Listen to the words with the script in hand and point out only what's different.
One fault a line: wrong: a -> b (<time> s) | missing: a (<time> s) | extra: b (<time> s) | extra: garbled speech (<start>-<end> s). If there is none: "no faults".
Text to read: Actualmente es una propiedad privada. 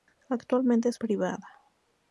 missing: una propiedad (1.0 s)